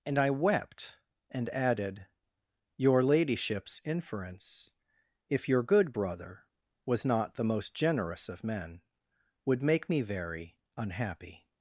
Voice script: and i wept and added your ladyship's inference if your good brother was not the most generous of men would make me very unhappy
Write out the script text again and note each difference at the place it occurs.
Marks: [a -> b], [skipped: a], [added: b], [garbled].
and i wept and added your ladyship's inference if your good brother was not the most generous of men would make me very unhappy